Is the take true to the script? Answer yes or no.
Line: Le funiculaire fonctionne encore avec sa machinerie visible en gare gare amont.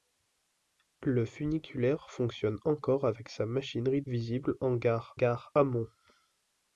yes